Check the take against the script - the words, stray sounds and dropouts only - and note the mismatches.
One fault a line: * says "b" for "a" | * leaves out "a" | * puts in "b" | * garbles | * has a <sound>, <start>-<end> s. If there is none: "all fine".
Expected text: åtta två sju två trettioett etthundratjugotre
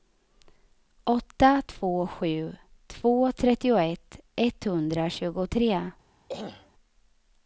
* has a throat clearing, 6.3-6.7 s